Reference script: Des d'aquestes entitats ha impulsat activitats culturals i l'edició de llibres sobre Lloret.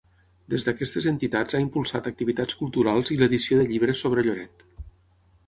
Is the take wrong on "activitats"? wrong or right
right